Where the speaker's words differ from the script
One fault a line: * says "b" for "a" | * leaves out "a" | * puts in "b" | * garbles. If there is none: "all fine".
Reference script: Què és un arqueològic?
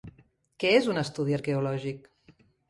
* puts in "estudi"